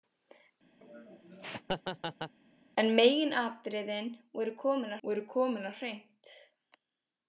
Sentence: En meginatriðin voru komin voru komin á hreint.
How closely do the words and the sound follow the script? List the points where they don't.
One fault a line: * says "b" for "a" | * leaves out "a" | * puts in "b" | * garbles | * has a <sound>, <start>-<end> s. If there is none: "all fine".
* has a laugh, 0.8-2.3 s